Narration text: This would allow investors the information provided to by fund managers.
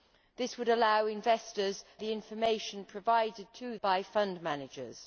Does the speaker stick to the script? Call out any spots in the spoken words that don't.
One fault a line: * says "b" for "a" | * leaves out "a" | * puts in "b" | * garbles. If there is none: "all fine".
all fine